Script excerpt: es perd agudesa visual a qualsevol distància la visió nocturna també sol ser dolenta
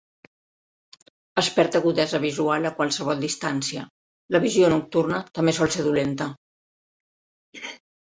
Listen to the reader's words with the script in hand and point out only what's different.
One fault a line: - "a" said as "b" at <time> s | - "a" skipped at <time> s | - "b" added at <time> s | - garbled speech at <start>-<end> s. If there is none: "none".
none